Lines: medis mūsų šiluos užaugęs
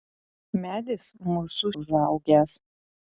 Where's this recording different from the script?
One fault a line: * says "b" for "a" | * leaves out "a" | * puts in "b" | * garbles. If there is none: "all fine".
* leaves out "šiluos"